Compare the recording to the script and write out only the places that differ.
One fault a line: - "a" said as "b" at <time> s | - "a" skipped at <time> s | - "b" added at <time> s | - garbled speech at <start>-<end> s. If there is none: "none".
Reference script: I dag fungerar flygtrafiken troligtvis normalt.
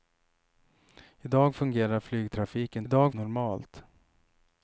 - "troligtvis" said as "dag" at 2.9 s